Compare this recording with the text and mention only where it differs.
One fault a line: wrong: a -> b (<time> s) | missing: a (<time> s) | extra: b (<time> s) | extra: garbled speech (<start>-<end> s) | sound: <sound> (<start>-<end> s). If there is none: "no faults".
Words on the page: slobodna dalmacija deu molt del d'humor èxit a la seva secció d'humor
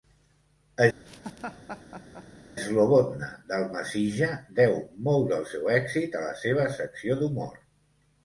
sound: laugh (1.0-2.3 s)
wrong: d'humor -> seu (5.5 s)